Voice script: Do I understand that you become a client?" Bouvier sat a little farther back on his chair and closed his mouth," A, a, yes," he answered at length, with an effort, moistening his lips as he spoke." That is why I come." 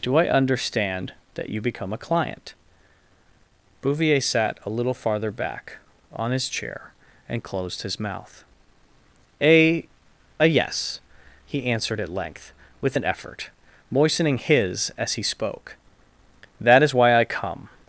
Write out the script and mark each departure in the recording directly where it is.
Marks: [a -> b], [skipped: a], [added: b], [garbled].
Do I understand that you become a client?" Bouvier sat a little farther back on his chair and closed his mouth," A, a, yes," he answered at length, with an effort, moistening his [skipped: lips] as he spoke." That is why I come."